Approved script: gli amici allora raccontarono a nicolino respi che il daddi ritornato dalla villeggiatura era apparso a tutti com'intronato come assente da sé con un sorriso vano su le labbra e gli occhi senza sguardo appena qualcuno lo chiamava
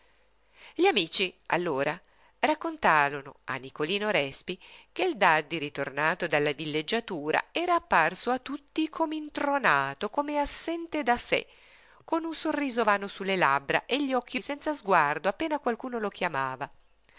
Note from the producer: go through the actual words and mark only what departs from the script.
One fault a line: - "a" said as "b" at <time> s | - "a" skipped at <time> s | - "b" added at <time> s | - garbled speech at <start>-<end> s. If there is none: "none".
none